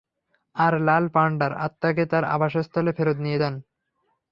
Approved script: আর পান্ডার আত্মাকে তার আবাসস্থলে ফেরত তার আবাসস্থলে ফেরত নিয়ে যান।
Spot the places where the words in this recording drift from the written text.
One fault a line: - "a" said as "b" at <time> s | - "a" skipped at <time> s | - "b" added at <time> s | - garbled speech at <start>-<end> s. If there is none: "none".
- "লাল" added at 0.9 s
- "তার আবাসস্থলে ফেরত" skipped at 3.2 s